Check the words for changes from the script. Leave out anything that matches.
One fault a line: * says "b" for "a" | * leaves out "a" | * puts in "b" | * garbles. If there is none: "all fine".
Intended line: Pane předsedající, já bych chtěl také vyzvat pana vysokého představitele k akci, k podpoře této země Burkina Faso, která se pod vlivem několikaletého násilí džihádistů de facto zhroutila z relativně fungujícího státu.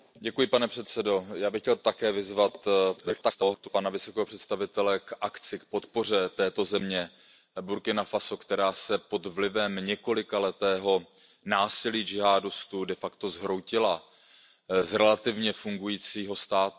* garbles